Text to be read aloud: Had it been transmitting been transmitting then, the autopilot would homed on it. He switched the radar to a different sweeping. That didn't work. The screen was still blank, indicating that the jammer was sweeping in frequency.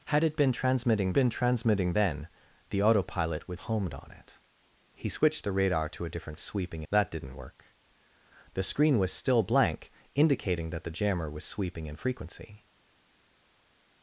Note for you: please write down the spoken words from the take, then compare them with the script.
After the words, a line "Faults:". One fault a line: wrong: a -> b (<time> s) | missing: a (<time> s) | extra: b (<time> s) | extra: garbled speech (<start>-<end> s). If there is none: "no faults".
Had it been transmitting been transmitting then, the autopilot would homed on it. He switched the radar to a different sweeping. That didn't work. The screen was still blank, indicating that the jammer was sweeping in frequency.
Faults:
no faults